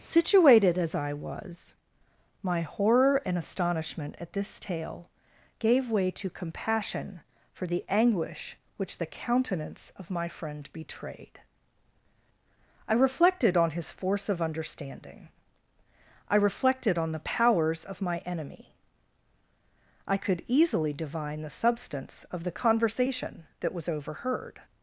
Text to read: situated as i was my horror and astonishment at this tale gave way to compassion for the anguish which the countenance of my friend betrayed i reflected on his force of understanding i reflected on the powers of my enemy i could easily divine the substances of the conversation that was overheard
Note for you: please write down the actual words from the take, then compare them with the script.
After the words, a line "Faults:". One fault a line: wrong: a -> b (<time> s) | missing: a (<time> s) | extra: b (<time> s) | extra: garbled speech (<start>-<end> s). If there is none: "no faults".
situated as i was my horror and astonishment at this tale gave way to compassion for the anguish which the countenance of my friend betrayed i reflected on his force of understanding i reflected on the powers of my enemy i could easily divine the substance of the conversation that was overheard
Faults:
wrong: substances -> substance (21.5 s)